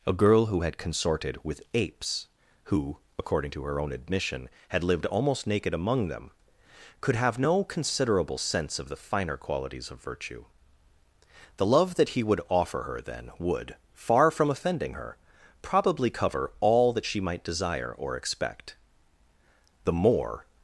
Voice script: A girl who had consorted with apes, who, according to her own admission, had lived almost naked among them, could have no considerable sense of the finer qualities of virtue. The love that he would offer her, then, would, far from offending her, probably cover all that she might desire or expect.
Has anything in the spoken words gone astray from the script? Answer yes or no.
yes